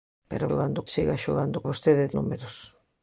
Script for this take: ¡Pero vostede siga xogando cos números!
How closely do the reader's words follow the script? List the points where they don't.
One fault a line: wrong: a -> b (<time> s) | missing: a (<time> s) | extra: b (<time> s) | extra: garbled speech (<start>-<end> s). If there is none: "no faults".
wrong: vostede -> xogando (0.5 s)
wrong: cos -> vostede (1.7 s)